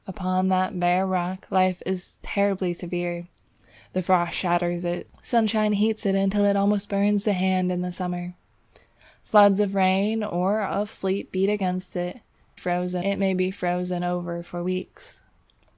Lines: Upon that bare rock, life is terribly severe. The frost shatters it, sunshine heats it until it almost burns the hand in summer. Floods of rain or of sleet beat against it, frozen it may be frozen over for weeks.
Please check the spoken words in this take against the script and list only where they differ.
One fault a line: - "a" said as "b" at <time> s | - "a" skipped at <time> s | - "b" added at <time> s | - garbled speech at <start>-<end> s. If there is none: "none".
none